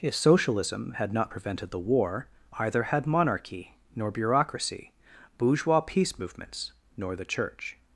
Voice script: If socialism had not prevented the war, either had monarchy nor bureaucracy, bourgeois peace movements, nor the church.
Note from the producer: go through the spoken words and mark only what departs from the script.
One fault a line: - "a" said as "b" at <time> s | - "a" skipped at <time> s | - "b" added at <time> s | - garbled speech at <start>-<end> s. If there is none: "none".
none